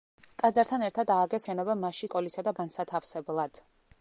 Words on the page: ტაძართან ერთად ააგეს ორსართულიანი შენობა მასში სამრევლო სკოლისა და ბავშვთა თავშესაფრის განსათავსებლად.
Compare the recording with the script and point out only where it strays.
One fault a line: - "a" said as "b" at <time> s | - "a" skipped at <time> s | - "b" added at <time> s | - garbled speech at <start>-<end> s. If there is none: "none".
- "ორსართულიანი" skipped at 1.4 s
- "სამრევლო" skipped at 2.1 s
- "ბავშვთა თავშესაფრის" skipped at 2.5 s